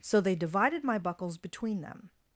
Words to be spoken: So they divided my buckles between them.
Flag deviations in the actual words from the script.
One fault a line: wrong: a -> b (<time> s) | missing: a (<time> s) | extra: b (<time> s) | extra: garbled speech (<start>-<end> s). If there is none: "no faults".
no faults